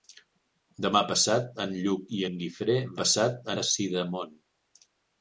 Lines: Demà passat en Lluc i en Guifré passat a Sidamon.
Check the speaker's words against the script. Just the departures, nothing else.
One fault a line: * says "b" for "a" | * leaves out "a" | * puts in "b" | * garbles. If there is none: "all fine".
all fine